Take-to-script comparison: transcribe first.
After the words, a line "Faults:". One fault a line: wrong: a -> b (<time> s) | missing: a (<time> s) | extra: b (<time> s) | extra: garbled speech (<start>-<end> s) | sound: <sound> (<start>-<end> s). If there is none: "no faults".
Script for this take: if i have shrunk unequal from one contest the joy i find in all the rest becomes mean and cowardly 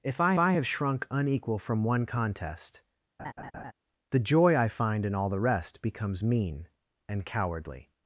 if i i have shrunk unequal from one contest the joy i find in all the rest becomes mean and cowardly
Faults:
extra: i (0.4 s)
sound: laugh (3.2-3.7 s)